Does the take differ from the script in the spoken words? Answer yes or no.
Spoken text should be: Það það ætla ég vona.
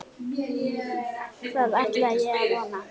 yes